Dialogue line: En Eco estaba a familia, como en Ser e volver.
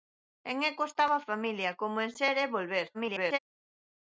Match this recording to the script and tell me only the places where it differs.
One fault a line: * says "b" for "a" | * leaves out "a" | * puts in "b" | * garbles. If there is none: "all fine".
* garbles